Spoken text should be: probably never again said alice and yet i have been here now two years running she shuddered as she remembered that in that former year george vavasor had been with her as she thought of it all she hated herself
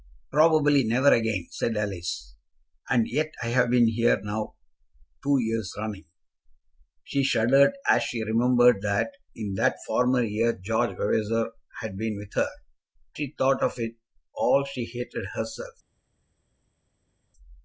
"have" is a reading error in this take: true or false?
false